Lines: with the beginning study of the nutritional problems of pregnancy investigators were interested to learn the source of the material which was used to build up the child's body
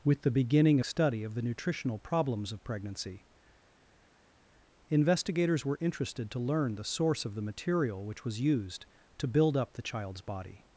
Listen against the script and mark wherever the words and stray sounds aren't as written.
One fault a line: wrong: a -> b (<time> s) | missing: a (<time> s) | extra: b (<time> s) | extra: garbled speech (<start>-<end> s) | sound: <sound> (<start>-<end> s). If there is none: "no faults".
no faults